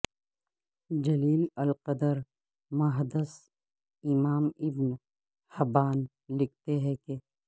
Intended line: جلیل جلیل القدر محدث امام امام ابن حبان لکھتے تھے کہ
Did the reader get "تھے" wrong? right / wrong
wrong